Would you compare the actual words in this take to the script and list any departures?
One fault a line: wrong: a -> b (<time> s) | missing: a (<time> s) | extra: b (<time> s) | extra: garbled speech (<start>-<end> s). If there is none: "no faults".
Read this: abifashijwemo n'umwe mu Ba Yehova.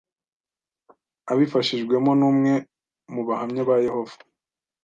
extra: Bahamya (3.3 s)